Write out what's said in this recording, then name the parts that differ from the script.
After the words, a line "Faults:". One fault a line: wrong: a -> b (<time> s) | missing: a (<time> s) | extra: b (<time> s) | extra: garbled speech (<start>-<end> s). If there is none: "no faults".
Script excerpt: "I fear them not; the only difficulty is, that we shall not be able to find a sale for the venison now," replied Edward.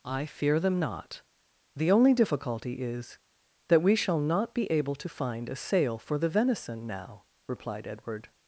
"I fear them not; the only difficulty is, that we shall not be able to find a sale for the venison now," replied Edward.
Faults:
no faults